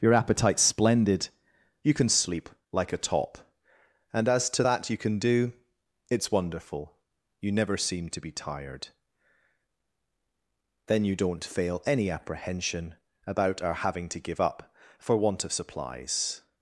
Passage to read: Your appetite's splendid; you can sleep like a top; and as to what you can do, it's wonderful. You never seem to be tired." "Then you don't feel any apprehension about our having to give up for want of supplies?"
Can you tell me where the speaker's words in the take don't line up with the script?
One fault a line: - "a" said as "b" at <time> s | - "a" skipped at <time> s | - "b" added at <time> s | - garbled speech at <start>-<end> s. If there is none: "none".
- "what" said as "that" at 4.6 s
- "feel" said as "fail" at 11.4 s